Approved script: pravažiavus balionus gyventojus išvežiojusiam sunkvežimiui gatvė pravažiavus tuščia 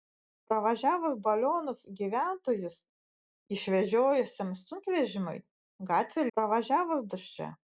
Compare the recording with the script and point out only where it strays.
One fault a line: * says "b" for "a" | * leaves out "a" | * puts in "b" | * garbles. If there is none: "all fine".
all fine